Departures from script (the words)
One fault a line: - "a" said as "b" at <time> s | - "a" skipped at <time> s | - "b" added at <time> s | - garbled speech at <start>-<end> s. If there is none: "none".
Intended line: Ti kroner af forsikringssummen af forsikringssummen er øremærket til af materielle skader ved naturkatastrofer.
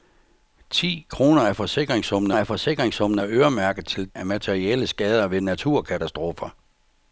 none